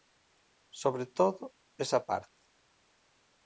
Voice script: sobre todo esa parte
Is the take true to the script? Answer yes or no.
yes